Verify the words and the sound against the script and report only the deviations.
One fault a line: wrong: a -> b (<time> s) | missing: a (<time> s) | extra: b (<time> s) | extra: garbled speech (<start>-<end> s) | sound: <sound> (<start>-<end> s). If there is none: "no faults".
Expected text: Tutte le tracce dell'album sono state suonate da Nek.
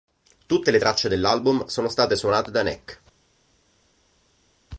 no faults